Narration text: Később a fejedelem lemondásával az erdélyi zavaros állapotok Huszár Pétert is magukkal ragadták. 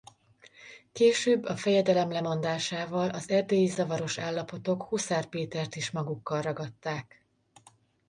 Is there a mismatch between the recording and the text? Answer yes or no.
no